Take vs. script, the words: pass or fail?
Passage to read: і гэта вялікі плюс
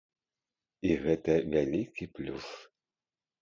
pass